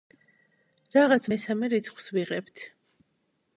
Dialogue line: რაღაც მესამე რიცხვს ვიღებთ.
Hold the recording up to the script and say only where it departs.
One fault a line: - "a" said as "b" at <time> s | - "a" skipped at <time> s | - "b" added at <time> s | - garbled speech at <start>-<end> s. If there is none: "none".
none